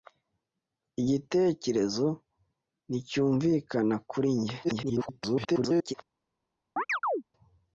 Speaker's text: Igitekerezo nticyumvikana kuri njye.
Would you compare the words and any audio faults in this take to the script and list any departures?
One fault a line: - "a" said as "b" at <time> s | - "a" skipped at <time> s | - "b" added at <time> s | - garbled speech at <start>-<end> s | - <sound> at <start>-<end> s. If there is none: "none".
- garbled speech at 4.6-5.9 s
- chirp at 6.8-7.2 s